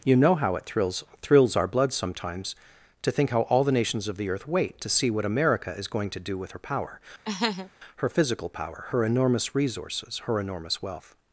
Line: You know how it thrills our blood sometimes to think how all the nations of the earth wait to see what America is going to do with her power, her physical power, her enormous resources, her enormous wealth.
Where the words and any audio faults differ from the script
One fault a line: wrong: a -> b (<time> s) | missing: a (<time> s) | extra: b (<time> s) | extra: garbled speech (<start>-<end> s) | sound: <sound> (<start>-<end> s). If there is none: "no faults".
extra: thrills (1.2 s)
sound: laugh (7.2-7.7 s)